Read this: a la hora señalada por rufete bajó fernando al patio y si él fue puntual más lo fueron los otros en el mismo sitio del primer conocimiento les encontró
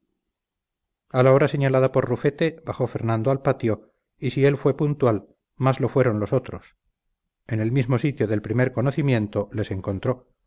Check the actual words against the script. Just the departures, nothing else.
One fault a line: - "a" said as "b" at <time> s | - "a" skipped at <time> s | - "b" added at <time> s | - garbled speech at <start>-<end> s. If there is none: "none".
none